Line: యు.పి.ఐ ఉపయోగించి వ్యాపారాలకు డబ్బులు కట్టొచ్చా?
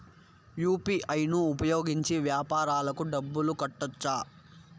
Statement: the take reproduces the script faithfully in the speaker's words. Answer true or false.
false